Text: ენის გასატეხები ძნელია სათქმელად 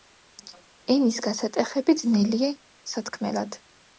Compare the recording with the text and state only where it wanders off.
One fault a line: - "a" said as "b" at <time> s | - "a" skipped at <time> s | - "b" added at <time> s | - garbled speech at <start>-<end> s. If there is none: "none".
none